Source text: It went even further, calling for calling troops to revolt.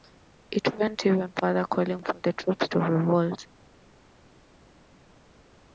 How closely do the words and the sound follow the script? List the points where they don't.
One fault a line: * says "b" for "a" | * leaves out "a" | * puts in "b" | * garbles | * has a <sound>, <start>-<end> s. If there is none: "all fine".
* says "the" for "calling"